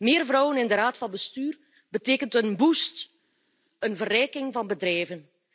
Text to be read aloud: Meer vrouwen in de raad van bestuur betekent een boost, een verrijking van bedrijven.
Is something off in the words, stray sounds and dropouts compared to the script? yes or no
no